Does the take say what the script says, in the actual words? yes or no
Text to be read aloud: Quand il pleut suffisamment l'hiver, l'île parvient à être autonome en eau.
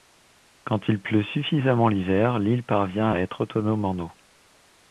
yes